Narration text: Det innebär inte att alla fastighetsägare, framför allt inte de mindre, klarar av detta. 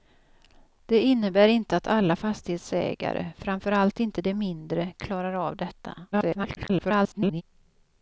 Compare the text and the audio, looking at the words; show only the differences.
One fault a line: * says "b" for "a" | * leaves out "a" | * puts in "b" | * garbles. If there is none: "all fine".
* garbles